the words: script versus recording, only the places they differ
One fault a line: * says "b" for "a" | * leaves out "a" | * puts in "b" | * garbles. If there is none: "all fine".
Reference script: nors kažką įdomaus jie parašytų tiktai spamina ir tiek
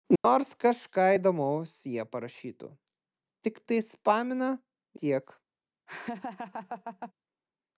* leaves out "ir"